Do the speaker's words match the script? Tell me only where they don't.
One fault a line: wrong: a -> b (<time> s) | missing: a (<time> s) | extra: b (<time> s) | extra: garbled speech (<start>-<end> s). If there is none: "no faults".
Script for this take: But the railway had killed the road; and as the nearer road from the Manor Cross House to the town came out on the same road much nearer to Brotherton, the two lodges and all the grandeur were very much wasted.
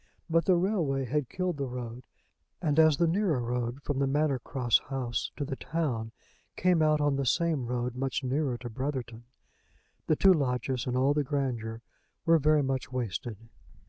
no faults